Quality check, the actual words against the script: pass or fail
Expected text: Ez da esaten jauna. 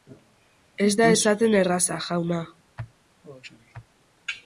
fail